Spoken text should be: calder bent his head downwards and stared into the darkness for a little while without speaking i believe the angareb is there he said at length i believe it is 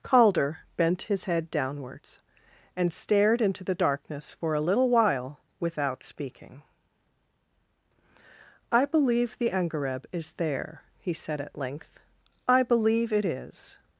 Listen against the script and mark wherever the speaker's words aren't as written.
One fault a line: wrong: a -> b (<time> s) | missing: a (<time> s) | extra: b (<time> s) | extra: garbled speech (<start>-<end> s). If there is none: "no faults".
no faults